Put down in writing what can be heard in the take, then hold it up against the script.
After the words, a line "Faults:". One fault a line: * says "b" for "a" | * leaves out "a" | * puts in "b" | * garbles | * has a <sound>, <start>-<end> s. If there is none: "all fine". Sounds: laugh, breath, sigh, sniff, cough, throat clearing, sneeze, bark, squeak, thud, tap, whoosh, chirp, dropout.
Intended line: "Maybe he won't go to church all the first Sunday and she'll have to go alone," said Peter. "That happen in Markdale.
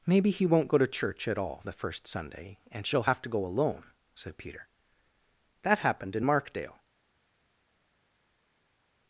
"Maybe he won't go to church at all the first Sunday and she'll have to go alone," said Peter. "That happened in Markdale.
Faults:
* puts in "at"
* says "happened" for "happen"